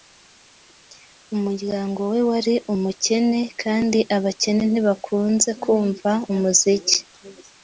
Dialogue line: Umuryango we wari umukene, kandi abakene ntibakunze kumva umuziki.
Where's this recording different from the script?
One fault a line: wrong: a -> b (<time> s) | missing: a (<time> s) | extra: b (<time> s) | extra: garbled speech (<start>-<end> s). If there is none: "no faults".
no faults